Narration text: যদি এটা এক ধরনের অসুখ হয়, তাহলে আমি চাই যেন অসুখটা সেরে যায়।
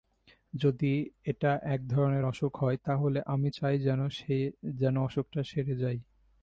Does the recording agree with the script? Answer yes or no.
yes